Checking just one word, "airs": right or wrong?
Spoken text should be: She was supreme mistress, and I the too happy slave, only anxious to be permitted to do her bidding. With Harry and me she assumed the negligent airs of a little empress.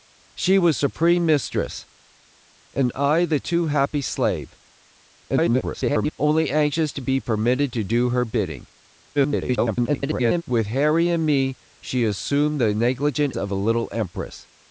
wrong